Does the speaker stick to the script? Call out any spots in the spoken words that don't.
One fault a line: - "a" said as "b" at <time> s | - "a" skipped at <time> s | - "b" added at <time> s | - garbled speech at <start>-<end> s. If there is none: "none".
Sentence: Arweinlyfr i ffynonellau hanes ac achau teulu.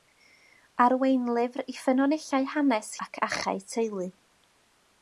none